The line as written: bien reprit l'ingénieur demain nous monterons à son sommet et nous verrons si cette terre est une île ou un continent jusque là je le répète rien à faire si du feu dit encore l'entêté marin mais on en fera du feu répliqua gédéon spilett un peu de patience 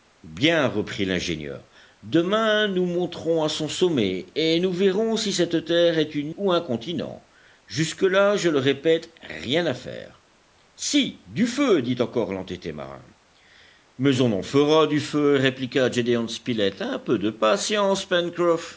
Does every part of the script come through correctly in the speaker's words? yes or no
no